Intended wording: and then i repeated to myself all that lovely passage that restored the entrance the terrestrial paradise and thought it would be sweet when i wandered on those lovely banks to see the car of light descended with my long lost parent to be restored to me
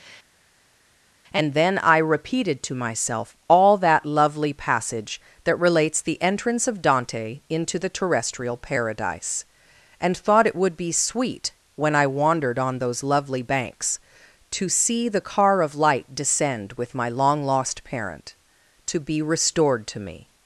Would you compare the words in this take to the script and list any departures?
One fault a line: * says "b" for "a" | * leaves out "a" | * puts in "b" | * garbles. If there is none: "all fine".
* says "relates" for "restored"
* puts in "of dante into"
* says "descend" for "descended"